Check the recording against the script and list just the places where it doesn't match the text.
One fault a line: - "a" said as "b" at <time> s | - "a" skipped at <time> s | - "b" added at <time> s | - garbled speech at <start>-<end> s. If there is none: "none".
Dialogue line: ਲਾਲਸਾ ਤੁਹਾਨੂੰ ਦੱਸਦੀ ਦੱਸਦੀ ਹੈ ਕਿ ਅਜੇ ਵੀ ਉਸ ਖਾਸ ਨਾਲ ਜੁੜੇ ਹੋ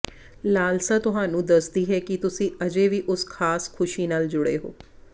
- "ਦੱਸਦੀ" skipped at 1.8 s
- "ਤੁਸੀਂ" added at 2.2 s
- "ਖੁਸ਼ੀ" added at 3.7 s